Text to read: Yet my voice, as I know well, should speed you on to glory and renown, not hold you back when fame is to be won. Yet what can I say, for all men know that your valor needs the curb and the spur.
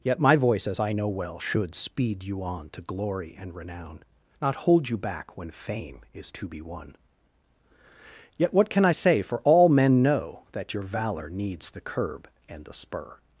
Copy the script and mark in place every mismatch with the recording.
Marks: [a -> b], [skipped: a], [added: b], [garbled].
Yet my voice, as I know well, should speed you on to glory and renown, not hold you back when fame is to be won. Yet what can I say, for all men know that your valor needs the curb and the spur.